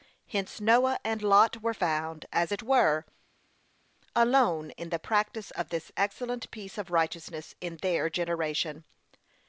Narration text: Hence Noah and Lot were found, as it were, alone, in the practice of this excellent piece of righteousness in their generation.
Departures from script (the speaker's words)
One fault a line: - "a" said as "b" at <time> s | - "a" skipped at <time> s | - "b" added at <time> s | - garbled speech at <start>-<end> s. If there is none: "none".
none